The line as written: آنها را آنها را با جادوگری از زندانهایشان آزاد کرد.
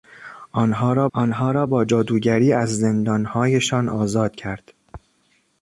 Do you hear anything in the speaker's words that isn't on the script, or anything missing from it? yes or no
no